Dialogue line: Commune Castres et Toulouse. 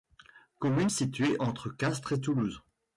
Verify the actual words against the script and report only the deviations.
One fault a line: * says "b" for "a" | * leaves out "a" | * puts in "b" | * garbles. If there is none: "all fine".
* puts in "située entre"